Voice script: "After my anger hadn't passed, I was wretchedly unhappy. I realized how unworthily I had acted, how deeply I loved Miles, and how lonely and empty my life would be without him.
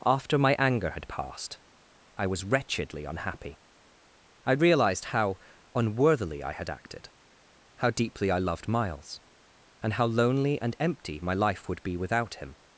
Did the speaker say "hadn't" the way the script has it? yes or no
no